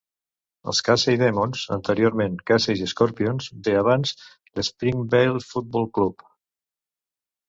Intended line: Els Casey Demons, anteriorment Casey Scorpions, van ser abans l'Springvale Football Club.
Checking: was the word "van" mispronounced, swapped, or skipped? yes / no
yes